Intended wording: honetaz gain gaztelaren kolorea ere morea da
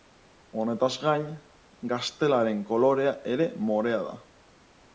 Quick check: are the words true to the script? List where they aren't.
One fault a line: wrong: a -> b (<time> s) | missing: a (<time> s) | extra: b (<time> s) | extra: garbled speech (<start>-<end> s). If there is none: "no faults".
no faults